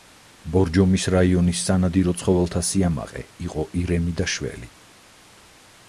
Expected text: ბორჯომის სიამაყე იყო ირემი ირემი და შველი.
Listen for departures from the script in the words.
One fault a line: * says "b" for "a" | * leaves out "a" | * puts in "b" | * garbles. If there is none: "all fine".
* puts in "რაიონის სანადირო ცხოველთა"
* leaves out "ირემი"